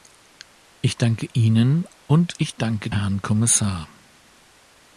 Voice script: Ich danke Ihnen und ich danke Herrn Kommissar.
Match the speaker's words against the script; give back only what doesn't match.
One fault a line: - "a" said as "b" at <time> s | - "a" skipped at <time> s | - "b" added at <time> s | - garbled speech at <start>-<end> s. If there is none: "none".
none